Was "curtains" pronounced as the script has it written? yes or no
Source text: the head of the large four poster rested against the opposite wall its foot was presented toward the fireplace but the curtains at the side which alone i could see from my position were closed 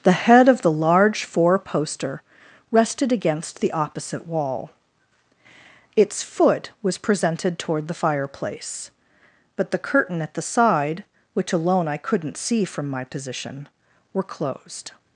no